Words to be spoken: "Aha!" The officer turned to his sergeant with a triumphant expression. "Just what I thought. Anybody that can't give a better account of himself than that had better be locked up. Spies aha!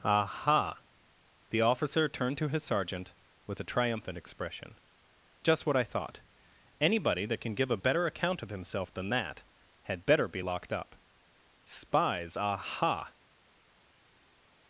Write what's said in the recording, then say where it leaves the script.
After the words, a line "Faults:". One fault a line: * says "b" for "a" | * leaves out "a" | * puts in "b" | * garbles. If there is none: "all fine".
"Aha!" The officer turned to his sergeant with a triumphant expression. "Just what I thought. Anybody that can give a better account of himself than that had better be locked up. Spies aha!
Faults:
* says "can" for "can't"